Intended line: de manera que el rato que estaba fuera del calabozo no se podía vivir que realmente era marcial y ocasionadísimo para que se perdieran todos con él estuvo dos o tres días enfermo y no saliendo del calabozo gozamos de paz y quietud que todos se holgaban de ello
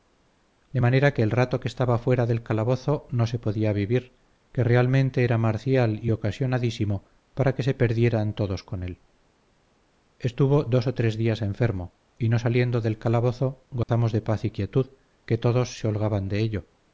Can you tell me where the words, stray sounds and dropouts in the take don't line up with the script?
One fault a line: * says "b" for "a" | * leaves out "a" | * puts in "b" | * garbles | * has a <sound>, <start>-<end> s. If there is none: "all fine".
* has a dropout, 13.8-13.9 s